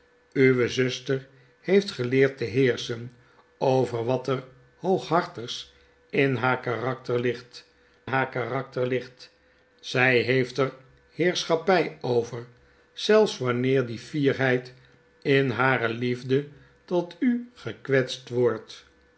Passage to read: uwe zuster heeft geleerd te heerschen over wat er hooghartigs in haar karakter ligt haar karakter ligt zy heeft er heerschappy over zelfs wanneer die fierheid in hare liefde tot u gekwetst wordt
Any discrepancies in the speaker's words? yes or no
no